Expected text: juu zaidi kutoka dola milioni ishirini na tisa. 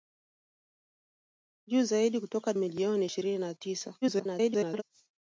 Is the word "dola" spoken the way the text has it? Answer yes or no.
no